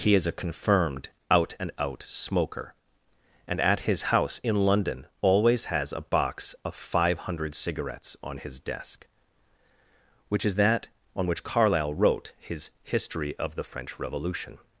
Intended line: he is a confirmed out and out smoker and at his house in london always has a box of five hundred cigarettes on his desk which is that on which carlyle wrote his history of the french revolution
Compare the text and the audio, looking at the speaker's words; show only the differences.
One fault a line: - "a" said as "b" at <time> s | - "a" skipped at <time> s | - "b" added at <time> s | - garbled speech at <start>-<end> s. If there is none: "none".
none